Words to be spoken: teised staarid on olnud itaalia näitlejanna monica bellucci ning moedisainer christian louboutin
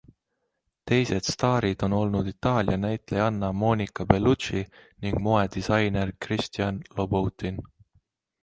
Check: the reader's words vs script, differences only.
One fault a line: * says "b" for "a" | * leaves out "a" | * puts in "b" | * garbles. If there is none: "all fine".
all fine